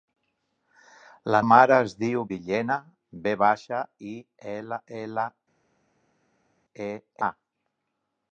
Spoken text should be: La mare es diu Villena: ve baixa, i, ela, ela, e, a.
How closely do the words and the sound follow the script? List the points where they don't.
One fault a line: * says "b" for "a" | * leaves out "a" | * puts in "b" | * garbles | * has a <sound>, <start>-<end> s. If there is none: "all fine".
all fine